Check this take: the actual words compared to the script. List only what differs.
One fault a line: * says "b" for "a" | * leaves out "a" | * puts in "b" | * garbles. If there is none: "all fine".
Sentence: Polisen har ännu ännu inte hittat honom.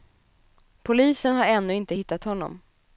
* leaves out "ännu"